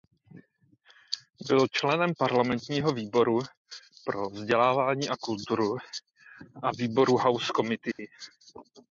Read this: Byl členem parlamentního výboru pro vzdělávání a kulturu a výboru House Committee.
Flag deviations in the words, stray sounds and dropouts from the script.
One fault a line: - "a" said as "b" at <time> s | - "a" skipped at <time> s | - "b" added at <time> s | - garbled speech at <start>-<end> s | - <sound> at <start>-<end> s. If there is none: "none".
- dropout at 7.9-8.0 s